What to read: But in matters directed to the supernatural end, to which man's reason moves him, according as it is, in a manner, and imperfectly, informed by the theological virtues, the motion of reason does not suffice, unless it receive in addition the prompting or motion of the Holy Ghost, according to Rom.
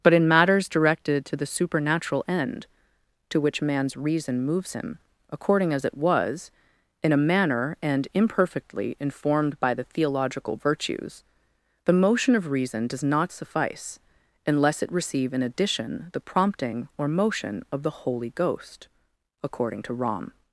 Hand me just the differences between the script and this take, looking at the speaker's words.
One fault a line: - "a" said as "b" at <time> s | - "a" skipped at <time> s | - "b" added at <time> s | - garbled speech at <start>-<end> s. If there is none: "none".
- "is" said as "was" at 6.0 s